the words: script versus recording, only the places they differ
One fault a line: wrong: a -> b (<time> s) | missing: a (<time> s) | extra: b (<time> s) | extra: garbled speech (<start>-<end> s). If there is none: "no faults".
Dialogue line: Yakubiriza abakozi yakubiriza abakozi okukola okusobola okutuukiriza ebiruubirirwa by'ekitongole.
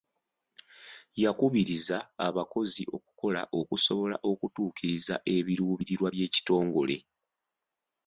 missing: yakubiriza abakozi (2.8 s)